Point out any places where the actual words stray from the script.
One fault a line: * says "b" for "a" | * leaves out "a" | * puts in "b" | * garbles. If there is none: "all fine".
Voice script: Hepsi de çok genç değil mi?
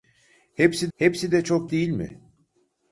* puts in "hepsi"
* leaves out "genç"